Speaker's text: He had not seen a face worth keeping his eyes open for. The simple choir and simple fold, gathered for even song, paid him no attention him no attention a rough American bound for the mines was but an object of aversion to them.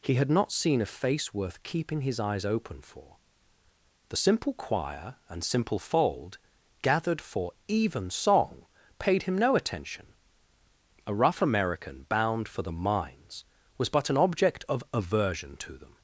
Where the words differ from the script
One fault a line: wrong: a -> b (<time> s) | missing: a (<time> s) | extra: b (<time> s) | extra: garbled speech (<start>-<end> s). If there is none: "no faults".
missing: him no attention (10.1 s)